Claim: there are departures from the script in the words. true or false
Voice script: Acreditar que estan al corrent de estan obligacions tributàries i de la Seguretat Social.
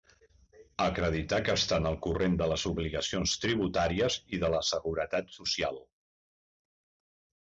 true